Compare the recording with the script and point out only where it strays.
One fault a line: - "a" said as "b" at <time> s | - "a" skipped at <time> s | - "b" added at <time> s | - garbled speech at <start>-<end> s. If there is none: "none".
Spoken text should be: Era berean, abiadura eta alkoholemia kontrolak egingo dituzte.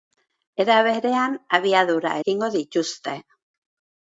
- "eta alkoholemia kontrolak" skipped at 2.1 s